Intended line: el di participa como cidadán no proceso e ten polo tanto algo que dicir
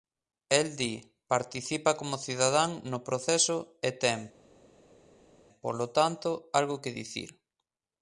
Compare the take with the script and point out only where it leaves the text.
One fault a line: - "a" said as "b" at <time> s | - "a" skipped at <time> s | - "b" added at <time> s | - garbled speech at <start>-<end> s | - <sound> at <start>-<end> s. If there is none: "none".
none